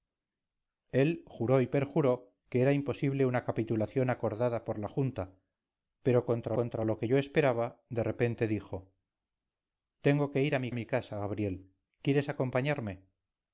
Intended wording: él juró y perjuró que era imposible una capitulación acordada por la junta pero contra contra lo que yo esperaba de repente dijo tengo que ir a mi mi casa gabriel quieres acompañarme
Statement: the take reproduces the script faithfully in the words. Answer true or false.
true